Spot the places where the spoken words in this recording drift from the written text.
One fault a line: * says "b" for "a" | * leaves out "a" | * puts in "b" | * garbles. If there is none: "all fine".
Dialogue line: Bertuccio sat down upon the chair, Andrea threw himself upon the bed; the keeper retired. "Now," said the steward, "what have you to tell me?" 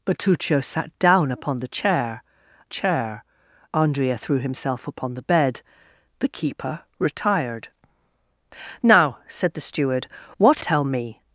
* puts in "chair"
* leaves out "have you to"